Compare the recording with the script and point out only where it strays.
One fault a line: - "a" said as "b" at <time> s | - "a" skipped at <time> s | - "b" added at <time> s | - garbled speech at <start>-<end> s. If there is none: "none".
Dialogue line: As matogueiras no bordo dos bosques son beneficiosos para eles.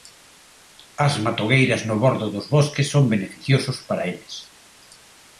none